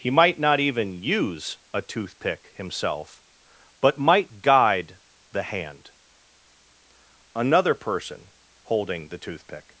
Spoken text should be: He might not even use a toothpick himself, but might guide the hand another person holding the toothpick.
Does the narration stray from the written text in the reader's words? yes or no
no